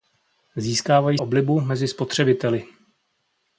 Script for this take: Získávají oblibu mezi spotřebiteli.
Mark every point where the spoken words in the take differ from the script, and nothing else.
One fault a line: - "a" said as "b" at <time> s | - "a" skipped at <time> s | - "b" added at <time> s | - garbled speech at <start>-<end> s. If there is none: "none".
none